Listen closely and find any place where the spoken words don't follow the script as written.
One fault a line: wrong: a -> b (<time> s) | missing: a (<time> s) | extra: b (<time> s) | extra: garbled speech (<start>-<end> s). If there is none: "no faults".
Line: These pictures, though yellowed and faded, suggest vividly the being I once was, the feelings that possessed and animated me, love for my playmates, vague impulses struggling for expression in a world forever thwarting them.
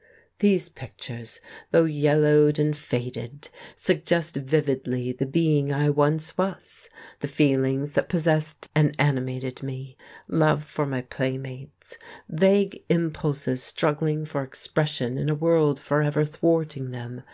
no faults